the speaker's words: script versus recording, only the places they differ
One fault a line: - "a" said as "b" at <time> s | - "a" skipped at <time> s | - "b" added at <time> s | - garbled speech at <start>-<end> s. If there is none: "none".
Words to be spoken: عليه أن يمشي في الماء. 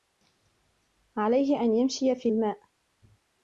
none